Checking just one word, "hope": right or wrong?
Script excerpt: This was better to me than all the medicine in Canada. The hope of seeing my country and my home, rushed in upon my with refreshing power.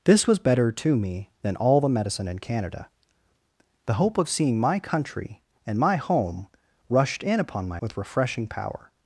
right